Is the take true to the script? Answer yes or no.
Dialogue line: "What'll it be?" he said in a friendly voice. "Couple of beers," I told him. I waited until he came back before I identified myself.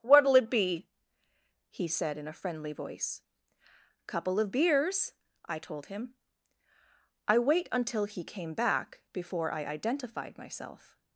no